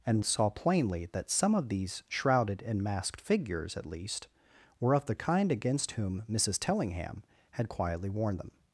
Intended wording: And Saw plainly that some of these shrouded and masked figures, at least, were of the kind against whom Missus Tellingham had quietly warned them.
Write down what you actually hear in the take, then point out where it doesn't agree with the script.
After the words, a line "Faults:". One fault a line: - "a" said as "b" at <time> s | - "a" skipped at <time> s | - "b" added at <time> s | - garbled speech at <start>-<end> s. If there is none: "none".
And Saw plainly that some of these shrouded and masked figures, at least, were of the kind against whom Missus Tellingham had quietly warned them.
Faults:
none